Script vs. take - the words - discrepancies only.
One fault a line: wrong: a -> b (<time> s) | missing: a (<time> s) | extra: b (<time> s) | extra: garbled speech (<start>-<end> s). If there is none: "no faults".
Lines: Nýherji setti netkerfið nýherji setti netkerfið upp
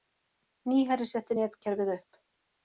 missing: nýherji setti netkerfið (1.9 s)